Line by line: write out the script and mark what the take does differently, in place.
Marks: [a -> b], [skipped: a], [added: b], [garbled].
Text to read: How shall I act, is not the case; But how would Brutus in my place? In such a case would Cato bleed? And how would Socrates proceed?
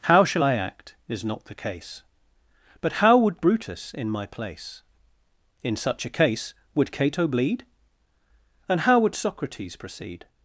How shall I act, is not the case; But how would Brutus in my place? In such a case would Cato bleed? And how would Socrates proceed?